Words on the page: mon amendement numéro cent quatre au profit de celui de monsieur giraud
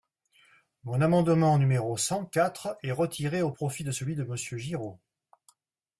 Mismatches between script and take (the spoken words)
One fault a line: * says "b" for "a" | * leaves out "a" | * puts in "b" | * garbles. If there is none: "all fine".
* puts in "est retiré"